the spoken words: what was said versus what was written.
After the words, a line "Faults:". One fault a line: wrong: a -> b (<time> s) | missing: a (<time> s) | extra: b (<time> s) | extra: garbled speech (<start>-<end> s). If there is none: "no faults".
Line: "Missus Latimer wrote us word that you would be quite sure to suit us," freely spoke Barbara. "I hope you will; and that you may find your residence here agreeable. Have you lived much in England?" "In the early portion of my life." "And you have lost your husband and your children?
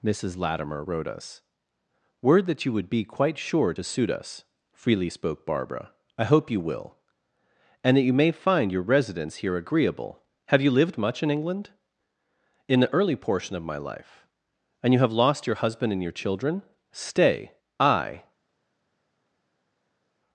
"Missus Latimer wrote us word that you would be quite sure to suit us," freely spoke Barbara. "I hope you will; and that you may find your residence here agreeable. Have you lived much in England?" "In the early portion of my life." "And you have lost your husband and your children? Stay. I
Faults:
extra: Stay I (16.9 s)